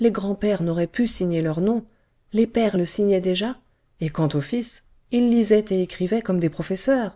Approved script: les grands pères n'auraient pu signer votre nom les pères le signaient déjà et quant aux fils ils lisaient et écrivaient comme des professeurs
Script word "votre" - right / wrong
wrong